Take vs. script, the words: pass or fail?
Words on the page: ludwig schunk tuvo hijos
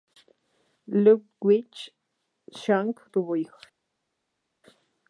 pass